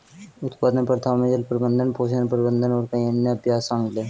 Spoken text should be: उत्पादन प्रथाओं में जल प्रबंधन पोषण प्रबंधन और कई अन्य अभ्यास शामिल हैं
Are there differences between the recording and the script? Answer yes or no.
no